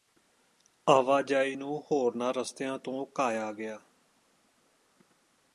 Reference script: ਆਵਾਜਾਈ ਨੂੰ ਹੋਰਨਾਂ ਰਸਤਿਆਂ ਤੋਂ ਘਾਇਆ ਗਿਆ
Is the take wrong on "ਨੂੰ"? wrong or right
right